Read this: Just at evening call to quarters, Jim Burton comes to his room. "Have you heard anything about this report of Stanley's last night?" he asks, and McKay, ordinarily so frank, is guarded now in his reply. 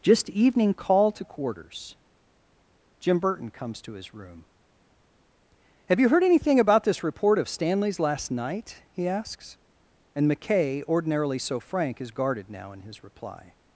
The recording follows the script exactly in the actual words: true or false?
false